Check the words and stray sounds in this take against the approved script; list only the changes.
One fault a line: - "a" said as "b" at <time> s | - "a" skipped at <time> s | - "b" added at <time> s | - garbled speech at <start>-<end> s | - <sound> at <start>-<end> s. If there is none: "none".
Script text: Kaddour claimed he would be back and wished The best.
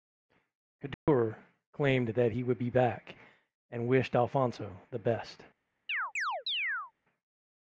- dropout at 0.9-1.1 s
- "that" added at 2.1 s
- "Alfonso" added at 4.1 s
- chirp at 5.9-6.9 s